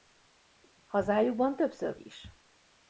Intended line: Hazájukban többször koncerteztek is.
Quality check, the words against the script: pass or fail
fail